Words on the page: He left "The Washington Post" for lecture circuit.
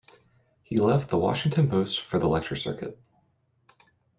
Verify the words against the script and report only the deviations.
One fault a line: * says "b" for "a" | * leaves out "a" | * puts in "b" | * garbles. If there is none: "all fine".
* puts in "the"